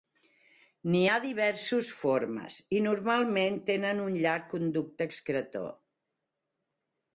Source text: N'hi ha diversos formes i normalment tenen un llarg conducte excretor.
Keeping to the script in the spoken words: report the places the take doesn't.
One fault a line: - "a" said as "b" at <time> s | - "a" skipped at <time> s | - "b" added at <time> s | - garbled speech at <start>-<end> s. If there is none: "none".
none